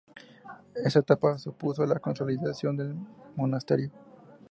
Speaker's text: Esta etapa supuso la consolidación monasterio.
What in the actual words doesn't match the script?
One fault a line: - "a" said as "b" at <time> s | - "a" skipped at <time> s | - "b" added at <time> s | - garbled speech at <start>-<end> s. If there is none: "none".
- "del" added at 2.8 s